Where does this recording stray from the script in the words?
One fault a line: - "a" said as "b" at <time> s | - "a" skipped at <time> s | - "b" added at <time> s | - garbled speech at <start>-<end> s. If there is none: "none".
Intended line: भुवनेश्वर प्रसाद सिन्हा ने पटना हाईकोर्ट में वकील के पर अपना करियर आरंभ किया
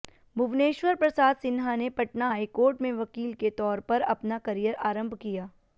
- "तौर" added at 3.6 s